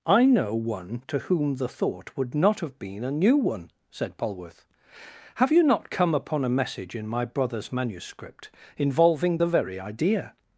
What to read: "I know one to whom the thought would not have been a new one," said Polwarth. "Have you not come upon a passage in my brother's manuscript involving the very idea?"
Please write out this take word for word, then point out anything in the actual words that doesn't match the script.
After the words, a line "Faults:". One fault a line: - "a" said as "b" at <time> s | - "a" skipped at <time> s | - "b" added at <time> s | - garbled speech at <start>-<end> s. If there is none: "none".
"I know one to whom the thought would not have been a new one," said Polwarth. "Have you not come upon a message in my brother's manuscript involving the very idea?"
Faults:
- "passage" said as "message" at 6.5 s